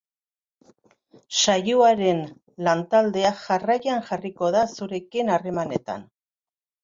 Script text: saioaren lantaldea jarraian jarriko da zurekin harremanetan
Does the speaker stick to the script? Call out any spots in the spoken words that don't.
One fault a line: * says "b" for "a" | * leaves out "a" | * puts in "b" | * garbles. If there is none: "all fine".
all fine